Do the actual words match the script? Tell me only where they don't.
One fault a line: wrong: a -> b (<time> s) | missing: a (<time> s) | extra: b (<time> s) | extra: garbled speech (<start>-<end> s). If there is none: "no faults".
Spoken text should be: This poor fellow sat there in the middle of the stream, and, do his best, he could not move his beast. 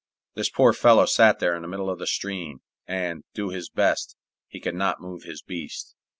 no faults